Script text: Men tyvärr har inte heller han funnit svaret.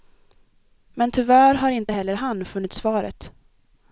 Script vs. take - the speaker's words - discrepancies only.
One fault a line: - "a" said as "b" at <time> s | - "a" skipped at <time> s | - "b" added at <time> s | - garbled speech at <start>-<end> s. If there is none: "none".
none